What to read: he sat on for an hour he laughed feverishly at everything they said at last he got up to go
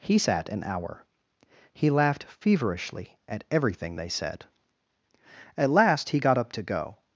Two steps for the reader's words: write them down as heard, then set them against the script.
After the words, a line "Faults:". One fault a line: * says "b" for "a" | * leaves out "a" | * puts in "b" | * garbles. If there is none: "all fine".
he sat an hour he laughed feverishly at everything they said at last he got up to go
Faults:
* leaves out "on for"